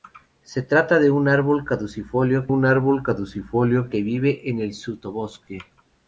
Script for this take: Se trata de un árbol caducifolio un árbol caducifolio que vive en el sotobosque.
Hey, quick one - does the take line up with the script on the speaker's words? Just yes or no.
yes